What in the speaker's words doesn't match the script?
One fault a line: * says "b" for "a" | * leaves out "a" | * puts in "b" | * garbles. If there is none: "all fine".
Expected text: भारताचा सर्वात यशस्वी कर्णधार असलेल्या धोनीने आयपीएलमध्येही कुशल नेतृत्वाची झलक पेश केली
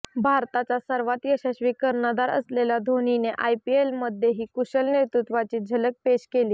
all fine